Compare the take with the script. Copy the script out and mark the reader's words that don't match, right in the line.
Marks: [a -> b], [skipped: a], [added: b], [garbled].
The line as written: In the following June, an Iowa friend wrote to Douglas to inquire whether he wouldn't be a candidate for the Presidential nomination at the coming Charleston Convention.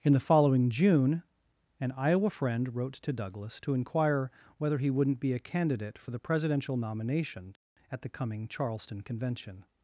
In the following June, an Iowa friend wrote to Douglas to inquire whether he wouldn't be a candidate for the Presidential nomination at the coming Charleston Convention.